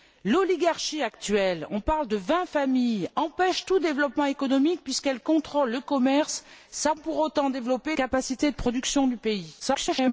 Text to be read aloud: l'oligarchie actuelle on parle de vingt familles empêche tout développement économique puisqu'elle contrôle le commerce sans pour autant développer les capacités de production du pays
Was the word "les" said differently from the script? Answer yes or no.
yes